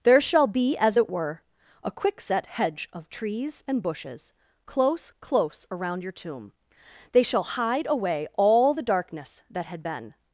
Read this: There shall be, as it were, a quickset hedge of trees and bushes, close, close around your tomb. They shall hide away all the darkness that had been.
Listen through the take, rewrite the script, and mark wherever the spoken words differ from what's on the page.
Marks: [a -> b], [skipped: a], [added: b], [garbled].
There shall be, as it were, a quickset hedge of trees and bushes, close, close around your tomb. They shall hide away all the darkness that had been.